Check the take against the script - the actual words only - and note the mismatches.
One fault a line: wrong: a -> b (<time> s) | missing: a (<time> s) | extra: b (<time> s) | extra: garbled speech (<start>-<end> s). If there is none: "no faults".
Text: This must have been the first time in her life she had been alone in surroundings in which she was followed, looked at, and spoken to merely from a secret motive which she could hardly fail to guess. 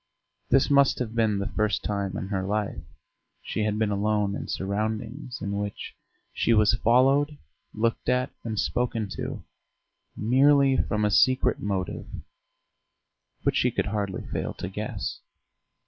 no faults